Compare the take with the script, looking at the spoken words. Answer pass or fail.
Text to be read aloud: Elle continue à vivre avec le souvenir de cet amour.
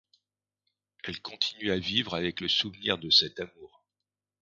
pass